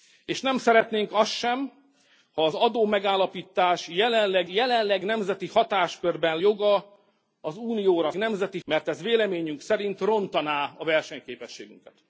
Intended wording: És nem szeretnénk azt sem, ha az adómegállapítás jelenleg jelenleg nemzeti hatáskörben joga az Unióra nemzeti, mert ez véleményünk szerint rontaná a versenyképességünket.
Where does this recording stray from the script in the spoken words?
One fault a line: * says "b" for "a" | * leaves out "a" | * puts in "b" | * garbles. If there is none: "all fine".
all fine